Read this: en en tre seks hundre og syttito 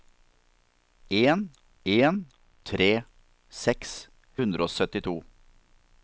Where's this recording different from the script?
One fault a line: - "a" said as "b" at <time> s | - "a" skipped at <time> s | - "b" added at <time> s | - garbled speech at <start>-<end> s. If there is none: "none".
none